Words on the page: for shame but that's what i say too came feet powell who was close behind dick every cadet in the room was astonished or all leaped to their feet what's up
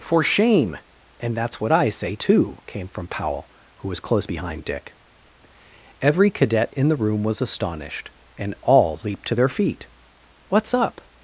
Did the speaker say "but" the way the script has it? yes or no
no